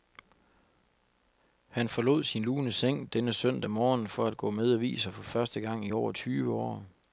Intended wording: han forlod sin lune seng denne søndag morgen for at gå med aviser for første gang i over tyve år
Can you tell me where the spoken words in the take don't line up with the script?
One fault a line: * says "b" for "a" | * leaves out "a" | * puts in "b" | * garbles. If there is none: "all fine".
all fine